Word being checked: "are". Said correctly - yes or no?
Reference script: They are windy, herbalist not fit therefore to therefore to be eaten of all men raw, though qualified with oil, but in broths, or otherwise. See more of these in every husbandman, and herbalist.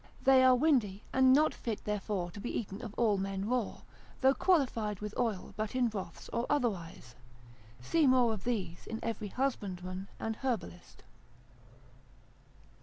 yes